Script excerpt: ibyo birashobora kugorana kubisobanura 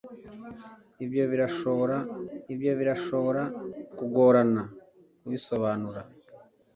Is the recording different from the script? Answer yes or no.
yes